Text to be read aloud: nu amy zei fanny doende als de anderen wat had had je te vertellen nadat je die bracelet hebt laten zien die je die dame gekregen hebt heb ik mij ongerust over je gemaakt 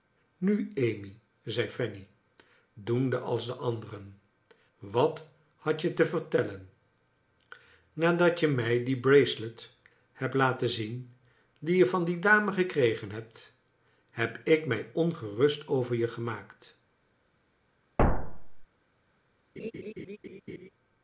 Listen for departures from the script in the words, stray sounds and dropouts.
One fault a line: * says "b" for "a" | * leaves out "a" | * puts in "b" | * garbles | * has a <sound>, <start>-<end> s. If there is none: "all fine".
* leaves out "had"
* puts in "mij"
* puts in "van"
* has a thud, 18.0-18.7 s
* has a laugh, 19.6-20.7 s